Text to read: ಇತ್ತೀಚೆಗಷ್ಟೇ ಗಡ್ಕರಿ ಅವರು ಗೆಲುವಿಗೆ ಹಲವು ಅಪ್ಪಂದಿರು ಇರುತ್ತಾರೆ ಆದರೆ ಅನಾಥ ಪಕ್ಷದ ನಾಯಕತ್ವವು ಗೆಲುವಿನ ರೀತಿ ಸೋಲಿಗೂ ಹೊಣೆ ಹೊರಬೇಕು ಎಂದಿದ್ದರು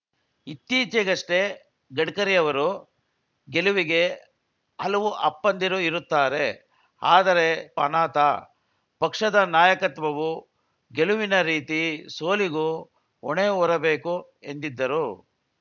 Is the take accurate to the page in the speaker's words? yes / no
yes